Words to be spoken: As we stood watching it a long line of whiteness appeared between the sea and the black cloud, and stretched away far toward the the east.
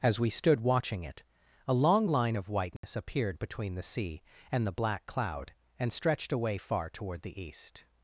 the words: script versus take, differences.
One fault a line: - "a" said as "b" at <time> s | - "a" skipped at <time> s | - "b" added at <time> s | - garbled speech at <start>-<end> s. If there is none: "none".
- "the" skipped at 7.4 s